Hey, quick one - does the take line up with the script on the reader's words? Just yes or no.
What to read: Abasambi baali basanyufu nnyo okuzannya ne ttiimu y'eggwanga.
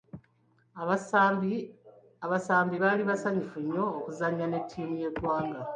yes